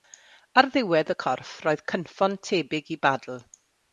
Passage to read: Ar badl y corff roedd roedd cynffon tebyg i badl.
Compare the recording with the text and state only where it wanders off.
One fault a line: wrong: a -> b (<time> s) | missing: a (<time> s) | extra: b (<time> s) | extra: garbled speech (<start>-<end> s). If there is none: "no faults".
wrong: badl -> ddiwedd (0.8 s)
missing: roedd (1.8 s)